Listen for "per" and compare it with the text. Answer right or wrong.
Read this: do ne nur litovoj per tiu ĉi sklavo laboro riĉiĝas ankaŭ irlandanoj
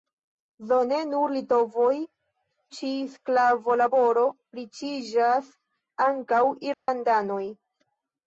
wrong